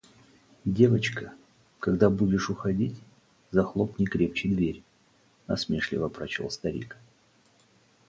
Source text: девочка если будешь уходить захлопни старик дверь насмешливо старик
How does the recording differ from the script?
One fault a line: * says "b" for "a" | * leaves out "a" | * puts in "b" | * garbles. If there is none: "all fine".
* says "когда" for "если"
* says "крепче" for "старик"
* puts in "прочел"